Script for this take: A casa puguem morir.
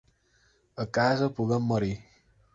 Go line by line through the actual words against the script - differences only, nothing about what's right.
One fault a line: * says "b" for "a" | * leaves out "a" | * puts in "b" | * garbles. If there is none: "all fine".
all fine